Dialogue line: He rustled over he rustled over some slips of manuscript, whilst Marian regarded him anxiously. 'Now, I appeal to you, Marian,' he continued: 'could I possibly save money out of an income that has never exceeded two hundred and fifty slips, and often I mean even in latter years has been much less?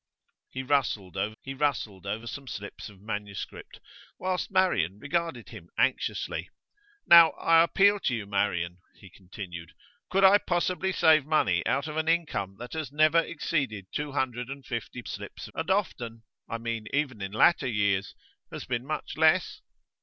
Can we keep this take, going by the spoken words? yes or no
yes